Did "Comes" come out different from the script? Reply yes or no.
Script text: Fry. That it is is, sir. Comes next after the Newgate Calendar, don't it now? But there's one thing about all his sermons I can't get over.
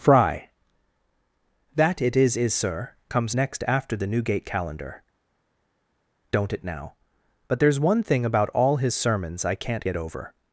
no